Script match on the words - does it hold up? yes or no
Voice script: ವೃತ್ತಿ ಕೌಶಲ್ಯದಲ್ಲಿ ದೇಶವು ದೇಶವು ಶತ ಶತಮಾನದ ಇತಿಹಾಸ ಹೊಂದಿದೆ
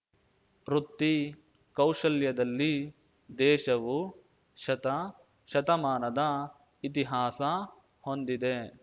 no